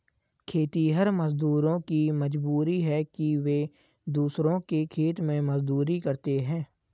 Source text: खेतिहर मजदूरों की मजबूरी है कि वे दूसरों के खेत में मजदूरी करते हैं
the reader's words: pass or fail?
pass